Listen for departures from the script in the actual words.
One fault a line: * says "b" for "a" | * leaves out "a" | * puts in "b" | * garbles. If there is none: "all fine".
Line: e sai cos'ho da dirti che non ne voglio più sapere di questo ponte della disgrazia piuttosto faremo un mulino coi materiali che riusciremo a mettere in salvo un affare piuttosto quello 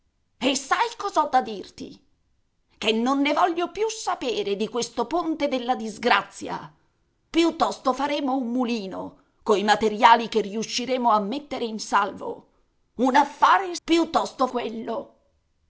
all fine